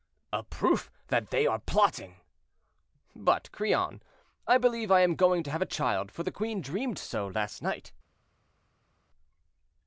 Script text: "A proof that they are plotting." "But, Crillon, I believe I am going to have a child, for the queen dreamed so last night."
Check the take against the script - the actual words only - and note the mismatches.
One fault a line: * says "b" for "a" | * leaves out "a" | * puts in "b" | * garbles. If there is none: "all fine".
all fine